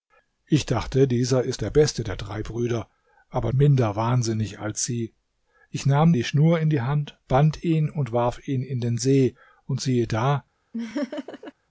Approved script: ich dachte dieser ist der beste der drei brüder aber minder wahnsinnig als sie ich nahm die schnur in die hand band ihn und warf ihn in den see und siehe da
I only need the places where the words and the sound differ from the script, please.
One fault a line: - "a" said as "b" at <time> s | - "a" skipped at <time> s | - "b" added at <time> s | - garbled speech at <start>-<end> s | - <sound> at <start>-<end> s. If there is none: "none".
- laugh at 10.7-11.5 s